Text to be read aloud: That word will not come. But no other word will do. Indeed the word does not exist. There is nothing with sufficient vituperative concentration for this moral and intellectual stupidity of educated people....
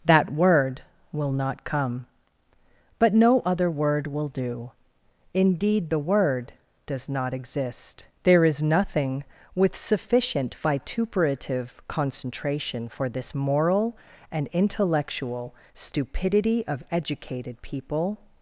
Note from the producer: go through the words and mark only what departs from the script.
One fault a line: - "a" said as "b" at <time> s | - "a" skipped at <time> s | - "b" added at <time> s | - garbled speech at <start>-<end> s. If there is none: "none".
none